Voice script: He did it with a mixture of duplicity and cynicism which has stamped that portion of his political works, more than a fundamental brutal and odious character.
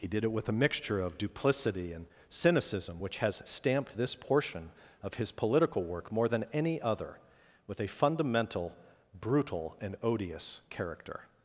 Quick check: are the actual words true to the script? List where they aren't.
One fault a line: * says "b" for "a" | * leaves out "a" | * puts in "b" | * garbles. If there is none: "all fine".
* says "this" for "that"
* says "work" for "works"
* puts in "any other with"